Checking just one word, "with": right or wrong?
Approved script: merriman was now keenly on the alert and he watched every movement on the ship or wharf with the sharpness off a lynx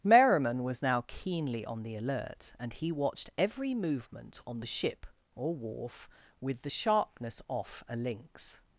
right